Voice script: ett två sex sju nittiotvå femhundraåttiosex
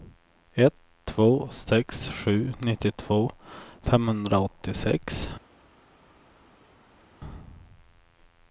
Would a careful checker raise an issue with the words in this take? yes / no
no